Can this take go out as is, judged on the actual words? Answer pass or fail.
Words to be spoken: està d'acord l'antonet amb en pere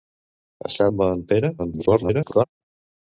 fail